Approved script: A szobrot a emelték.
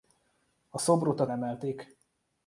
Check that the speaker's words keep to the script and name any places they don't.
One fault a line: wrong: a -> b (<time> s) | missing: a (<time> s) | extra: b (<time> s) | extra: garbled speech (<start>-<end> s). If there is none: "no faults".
no faults